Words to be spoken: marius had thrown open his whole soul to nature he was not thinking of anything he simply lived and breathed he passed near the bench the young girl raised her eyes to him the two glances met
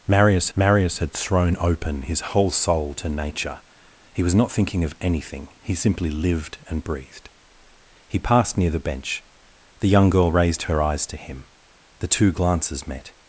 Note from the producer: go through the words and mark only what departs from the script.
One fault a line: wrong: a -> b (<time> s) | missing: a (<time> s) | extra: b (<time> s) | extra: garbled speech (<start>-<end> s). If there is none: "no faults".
extra: marius (0.6 s)